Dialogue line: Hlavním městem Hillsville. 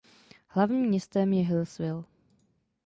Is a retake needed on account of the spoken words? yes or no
yes